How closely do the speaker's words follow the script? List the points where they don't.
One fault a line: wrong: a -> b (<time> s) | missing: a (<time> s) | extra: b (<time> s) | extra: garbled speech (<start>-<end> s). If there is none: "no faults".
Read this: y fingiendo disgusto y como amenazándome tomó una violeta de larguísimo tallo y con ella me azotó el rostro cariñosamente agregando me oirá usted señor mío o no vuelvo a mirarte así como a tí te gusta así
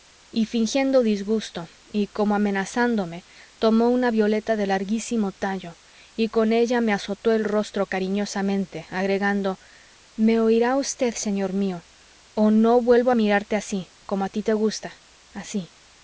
no faults